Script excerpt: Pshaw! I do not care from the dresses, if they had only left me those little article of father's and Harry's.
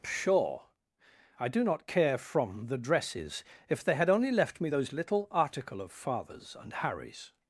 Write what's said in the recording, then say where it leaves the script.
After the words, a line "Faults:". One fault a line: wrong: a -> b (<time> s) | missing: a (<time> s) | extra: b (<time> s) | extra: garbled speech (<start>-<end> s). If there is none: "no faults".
Pshaw! I do not care from the dresses, if they had only left me those little article of father's and Harry's.
Faults:
no faults